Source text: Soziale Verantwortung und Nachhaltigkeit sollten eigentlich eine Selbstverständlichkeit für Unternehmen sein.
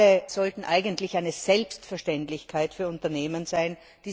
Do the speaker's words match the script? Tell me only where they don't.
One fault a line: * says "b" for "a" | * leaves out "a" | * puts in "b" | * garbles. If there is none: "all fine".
* leaves out "Verantwortung und Nachhaltigkeit"